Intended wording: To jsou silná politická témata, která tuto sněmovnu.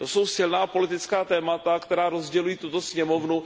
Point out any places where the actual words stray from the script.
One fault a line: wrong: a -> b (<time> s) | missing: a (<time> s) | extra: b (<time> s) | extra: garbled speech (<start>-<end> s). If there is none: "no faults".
extra: rozdělují (2.1 s)